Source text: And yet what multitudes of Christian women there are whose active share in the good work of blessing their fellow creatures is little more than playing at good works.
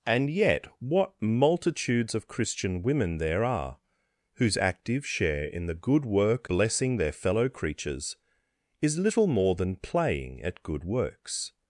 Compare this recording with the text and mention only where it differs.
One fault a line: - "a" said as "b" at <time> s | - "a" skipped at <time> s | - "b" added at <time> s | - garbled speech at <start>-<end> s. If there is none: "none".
- "of" skipped at 6.5 s